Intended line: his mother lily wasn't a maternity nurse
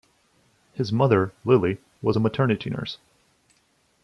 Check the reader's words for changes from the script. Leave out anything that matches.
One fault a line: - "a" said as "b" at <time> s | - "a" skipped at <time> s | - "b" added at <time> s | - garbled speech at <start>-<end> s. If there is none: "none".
- "wasn't" said as "was" at 2.0 s